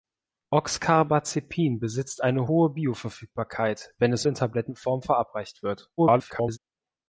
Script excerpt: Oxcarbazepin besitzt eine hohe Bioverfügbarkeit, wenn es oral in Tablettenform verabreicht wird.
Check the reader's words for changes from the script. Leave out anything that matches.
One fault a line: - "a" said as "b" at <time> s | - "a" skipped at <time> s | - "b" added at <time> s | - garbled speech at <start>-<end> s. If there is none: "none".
- "oral" skipped at 4.3 s
- garbled speech at 6.0-6.6 s